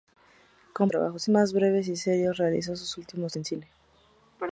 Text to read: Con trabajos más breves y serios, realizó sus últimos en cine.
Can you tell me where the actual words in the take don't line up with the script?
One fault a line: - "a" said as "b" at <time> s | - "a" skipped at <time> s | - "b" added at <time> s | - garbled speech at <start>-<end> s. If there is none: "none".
none